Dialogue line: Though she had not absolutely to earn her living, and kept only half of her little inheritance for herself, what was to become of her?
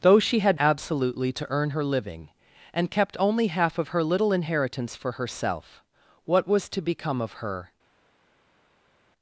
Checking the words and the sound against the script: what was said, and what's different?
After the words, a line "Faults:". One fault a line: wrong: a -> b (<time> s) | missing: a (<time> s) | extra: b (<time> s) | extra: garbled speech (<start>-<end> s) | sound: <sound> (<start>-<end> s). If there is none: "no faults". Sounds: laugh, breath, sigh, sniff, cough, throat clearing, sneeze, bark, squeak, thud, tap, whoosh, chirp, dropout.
Though she had absolutely to earn her living, and kept only half of her little inheritance for herself, what was to become of her?
Faults:
missing: not (0.6 s)